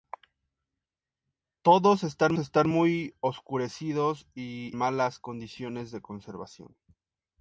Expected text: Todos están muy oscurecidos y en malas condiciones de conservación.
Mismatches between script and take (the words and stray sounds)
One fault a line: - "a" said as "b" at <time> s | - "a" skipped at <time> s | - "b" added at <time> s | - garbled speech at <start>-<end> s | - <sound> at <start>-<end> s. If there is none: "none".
- "están" added at 2.4 s
- "en" skipped at 4.8 s